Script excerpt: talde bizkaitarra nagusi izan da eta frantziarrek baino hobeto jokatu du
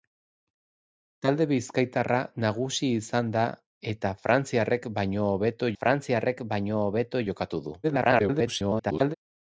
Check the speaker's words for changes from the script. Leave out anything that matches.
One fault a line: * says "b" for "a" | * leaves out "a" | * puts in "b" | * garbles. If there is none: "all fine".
* puts in "frantziarrek baino hobeto"
* garbles